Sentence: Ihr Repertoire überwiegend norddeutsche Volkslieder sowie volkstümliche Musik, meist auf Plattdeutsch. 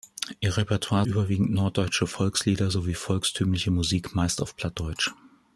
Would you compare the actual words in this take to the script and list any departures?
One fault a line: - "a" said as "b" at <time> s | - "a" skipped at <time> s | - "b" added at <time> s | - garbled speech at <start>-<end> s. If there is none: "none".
none